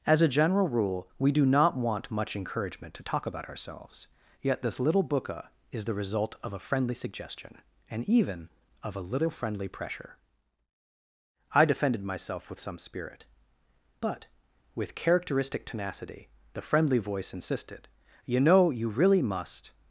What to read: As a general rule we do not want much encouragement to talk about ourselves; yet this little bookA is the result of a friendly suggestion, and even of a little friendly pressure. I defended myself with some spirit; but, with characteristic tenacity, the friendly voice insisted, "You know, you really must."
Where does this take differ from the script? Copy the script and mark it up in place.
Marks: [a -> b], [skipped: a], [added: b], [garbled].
As a general rule we do not want much encouragement to talk about ourselves; yet this little bookA is the result of a friendly suggestion, and even of a little friendly pressure. I defended myself with some spirit; but, with characteristic tenacity, the friendly voice insisted, "You know, you really must."